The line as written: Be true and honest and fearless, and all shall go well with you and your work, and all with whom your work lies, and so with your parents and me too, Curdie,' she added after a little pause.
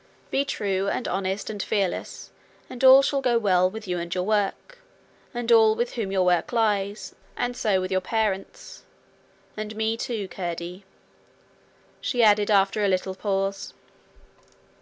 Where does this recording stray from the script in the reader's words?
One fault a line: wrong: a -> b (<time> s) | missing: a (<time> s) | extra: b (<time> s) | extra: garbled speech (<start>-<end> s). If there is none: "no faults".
no faults